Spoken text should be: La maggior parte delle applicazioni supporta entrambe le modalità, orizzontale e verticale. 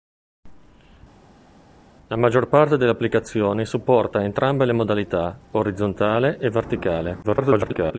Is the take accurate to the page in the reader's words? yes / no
no